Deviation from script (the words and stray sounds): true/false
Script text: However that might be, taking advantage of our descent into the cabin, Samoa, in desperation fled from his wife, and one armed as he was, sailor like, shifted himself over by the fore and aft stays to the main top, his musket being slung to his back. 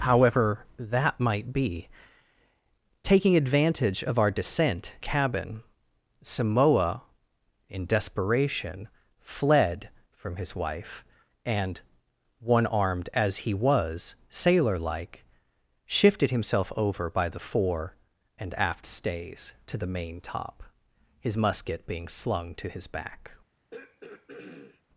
true